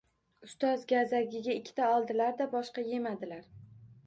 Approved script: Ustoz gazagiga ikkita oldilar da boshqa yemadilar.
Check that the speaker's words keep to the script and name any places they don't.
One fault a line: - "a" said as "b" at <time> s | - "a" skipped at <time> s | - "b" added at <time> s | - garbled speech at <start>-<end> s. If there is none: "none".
none